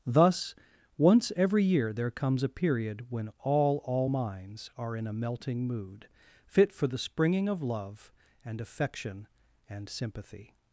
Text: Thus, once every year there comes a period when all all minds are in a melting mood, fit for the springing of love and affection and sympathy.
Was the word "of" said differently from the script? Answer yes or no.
no